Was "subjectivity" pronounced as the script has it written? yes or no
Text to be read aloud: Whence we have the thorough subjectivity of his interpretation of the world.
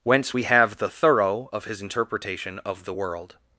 no